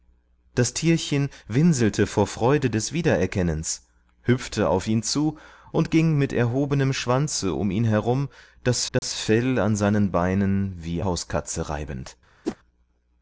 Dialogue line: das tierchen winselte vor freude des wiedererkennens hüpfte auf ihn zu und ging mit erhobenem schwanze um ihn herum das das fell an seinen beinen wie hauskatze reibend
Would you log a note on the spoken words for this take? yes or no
no